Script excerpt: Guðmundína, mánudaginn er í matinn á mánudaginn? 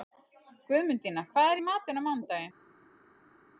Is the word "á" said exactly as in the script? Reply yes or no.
yes